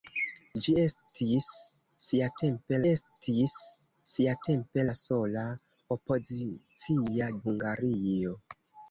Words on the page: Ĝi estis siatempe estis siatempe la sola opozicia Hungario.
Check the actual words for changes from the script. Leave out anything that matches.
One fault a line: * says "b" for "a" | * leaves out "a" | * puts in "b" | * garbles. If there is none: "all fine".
all fine